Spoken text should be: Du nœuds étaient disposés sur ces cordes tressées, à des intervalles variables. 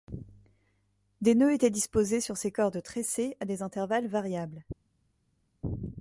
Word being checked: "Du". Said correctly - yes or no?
no